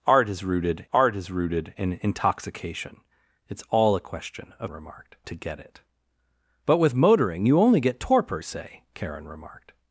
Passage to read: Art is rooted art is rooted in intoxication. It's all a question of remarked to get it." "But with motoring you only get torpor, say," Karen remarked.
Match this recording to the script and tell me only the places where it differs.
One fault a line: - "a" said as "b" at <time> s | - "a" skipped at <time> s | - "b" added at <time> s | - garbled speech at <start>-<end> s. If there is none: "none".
none